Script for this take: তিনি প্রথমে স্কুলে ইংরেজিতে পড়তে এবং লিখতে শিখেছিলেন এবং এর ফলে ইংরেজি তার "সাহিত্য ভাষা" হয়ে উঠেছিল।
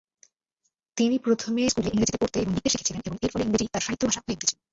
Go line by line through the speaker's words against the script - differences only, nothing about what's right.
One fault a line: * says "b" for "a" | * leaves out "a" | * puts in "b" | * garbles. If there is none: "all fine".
all fine